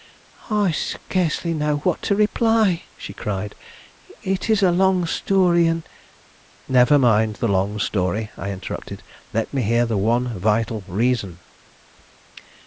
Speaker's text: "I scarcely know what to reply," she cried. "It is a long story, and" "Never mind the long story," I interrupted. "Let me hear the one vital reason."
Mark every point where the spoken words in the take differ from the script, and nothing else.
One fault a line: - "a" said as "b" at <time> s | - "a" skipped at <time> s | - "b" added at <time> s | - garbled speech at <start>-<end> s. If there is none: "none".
none